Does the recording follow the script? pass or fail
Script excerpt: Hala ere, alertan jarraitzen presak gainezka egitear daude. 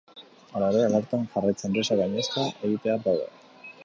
pass